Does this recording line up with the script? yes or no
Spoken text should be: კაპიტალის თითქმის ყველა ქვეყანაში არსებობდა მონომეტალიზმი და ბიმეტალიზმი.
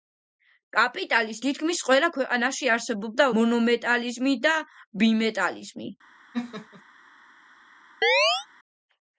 yes